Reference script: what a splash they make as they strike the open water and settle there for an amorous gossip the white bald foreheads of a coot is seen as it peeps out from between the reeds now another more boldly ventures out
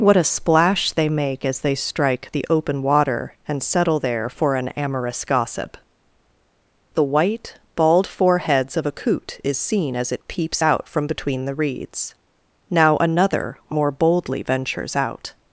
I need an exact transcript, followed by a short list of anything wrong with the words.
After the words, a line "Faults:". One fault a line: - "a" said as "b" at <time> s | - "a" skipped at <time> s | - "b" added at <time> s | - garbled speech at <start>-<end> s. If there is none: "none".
what a splash they make as they strike the open water and settle there for an amorous gossip the white bald foreheads of a coot is seen as it peeps out from between the reeds now another more boldly ventures out
Faults:
none